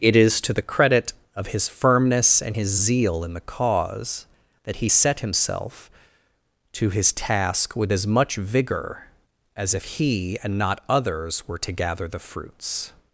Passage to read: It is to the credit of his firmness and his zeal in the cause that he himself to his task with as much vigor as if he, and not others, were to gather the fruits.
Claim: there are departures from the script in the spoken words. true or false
true